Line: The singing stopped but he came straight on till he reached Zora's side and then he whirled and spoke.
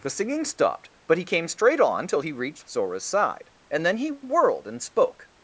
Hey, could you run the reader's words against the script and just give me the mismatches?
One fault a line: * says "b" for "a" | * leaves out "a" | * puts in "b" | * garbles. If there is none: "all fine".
all fine